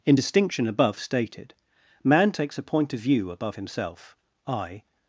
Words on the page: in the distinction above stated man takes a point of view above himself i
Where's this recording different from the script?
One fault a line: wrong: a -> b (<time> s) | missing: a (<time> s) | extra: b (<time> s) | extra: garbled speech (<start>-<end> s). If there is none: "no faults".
missing: the (0.1 s)